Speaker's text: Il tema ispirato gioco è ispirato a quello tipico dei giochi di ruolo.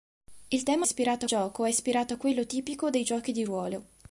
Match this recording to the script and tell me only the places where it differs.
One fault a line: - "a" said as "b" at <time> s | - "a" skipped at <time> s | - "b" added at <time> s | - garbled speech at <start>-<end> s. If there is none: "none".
none